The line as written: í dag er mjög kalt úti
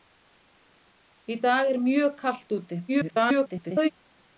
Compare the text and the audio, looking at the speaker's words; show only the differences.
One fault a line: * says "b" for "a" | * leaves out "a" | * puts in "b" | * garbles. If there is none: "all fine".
* garbles